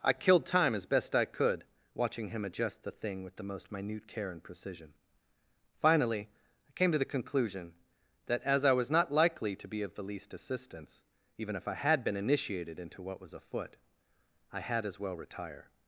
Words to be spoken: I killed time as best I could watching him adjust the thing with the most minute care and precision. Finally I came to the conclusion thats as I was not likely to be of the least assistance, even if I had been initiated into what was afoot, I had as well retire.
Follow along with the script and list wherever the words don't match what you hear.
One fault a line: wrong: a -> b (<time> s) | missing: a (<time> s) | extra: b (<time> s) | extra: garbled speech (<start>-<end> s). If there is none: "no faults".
wrong: thats -> that (8.3 s)